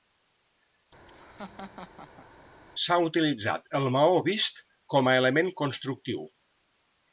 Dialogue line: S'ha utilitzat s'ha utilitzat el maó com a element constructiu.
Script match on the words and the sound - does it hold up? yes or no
no